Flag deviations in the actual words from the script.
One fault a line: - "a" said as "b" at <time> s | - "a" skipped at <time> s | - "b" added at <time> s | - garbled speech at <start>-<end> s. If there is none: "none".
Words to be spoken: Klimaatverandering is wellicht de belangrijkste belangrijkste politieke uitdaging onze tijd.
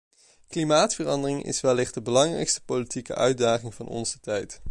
- "belangrijkste" skipped at 2.6 s
- "van" added at 3.7 s